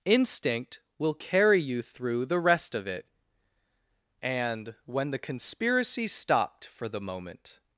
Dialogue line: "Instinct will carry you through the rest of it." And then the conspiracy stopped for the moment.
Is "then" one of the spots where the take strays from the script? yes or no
yes